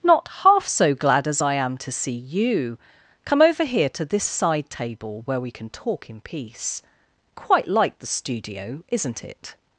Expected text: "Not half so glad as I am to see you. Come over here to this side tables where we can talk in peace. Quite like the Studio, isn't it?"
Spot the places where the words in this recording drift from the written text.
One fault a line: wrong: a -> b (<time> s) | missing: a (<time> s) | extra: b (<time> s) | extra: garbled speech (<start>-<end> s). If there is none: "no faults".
wrong: tables -> table (4.7 s)